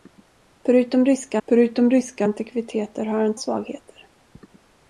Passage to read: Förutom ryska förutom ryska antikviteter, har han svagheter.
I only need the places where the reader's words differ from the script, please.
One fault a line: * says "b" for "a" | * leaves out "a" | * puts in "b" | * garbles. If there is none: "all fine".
all fine